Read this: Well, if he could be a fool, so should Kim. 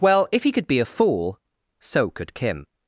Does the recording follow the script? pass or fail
fail